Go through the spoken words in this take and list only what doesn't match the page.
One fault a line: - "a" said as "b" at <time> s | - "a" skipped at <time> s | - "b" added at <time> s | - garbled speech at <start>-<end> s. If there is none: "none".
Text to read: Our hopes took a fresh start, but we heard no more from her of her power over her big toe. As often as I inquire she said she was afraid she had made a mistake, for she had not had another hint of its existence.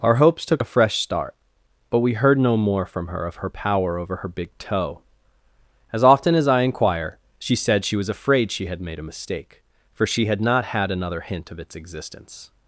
none